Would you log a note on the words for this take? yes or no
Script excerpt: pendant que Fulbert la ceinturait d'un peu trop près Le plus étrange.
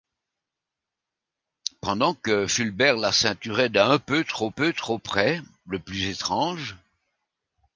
yes